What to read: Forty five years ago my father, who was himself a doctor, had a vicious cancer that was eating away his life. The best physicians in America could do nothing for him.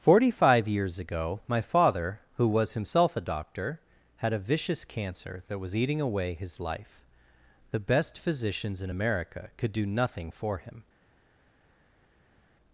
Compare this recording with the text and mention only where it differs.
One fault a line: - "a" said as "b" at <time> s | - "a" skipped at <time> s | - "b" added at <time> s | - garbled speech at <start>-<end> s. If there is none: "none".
none